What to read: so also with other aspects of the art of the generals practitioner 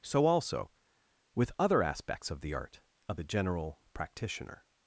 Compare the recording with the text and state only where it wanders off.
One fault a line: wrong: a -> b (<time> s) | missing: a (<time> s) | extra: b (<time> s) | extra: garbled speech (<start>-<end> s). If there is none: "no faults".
wrong: generals -> general (3.2 s)